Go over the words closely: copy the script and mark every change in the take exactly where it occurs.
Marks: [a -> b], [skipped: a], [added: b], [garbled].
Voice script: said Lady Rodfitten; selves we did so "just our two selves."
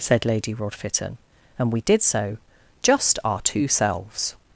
said Lady Rodfitten; [selves -> and] we did so "just our two selves."